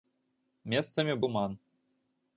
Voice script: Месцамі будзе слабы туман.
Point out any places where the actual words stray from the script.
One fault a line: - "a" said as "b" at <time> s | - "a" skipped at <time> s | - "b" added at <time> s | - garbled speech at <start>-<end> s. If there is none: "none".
- "будзе слабы" skipped at 1.1 s